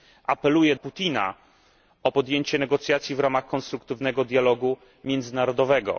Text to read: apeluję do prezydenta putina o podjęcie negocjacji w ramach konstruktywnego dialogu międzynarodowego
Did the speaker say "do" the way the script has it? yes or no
no